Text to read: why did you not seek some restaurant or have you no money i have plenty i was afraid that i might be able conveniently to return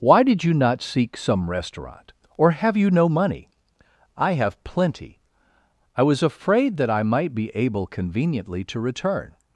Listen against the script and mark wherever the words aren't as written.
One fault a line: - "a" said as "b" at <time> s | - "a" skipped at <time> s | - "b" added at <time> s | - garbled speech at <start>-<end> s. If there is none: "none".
none